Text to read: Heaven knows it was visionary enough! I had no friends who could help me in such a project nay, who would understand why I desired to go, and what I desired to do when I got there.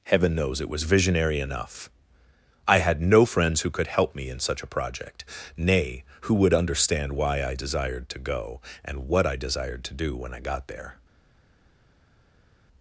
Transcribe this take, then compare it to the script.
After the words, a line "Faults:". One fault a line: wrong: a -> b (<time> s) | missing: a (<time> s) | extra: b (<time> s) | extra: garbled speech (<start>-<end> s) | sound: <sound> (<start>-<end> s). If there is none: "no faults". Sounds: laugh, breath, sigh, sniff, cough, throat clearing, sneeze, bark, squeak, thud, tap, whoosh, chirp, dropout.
Heaven knows it was visionary enough! I had no friends who could help me in such a project nay, who would understand why I desired to go, and what I desired to do when I got there.
Faults:
no faults